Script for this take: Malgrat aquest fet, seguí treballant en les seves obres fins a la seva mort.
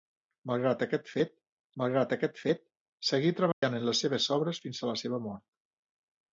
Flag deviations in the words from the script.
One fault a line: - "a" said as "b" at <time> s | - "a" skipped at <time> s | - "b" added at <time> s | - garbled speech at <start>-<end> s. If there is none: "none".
- "malgrat aquest fet" added at 1.8 s